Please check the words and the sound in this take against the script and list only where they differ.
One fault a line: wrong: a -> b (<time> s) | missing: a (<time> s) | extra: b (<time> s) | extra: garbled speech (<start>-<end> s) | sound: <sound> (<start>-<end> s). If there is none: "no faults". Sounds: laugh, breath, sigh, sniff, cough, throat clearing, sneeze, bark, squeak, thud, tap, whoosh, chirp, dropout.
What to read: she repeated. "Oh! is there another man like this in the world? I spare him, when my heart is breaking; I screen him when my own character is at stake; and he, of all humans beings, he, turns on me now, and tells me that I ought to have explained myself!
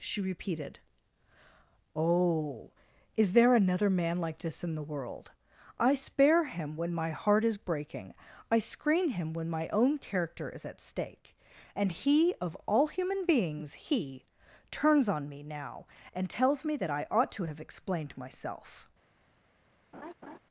wrong: humans -> human (12.9 s)
sound: laugh (19.9-20.4 s)